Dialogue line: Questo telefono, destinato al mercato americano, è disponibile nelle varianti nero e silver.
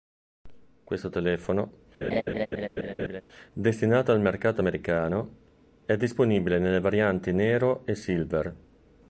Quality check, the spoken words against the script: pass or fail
pass